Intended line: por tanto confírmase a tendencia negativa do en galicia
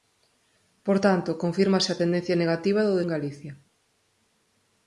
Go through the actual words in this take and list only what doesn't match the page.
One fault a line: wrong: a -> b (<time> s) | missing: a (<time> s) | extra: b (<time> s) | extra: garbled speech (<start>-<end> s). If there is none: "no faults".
no faults